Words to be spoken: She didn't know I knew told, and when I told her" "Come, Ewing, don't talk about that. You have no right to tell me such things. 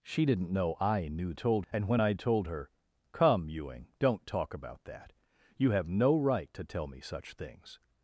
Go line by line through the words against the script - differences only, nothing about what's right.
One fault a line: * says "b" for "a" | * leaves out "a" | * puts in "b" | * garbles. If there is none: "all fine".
all fine